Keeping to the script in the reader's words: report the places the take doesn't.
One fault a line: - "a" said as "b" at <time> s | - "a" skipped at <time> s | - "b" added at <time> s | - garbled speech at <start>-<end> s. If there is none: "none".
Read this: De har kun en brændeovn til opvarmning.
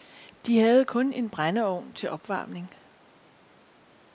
- "har" said as "havde" at 0.6 s